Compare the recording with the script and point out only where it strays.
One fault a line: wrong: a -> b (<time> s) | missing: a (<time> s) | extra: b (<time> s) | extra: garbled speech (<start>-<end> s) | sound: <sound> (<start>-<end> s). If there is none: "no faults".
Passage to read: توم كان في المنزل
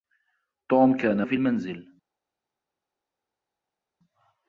no faults